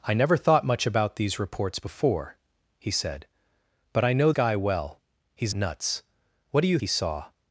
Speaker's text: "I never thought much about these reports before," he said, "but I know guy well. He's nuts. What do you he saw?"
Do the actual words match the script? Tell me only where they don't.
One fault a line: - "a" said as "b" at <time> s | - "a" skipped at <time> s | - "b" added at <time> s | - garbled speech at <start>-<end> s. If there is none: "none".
none